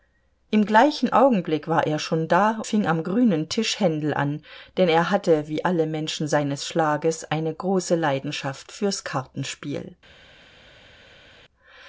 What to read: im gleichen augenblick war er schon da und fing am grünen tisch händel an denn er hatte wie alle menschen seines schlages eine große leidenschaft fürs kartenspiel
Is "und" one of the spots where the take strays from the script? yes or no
yes